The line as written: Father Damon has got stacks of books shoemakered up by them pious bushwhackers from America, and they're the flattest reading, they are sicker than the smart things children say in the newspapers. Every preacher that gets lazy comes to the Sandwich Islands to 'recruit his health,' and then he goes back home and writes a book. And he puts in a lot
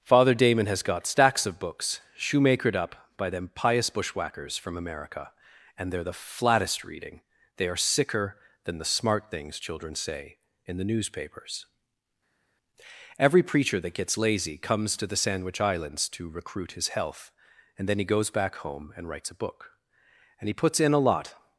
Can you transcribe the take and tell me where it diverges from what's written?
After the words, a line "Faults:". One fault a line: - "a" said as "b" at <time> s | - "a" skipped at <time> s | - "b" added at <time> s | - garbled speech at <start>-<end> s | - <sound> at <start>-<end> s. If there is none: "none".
Father Damon has got stacks of books shoemakered up by them pious bushwhackers from America, and they're the flattest reading, they are sicker than the smart things children say in the newspapers. Every preacher that gets lazy comes to the Sandwich Islands to 'recruit his health,' and then he goes back home and writes a book. And he puts in a lot
Faults:
none